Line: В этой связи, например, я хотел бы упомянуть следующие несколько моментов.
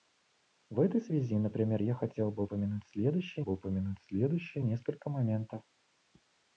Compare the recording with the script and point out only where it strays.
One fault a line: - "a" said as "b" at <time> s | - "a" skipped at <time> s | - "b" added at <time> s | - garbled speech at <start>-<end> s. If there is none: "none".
- "бы упомянуть следующие" added at 3.4 s